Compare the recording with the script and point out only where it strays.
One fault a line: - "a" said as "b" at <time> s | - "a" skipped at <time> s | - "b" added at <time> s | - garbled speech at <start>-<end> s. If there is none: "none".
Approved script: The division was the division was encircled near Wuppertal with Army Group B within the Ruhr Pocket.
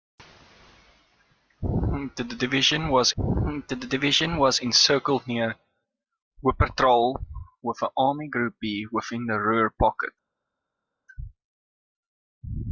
none